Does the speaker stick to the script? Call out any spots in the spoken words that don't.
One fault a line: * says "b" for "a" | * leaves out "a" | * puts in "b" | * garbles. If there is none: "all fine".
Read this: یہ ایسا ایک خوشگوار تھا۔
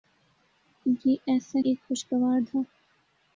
all fine